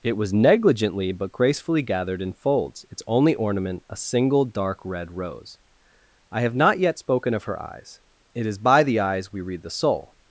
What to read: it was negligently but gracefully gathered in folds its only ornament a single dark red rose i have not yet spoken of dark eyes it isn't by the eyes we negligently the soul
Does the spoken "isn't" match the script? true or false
false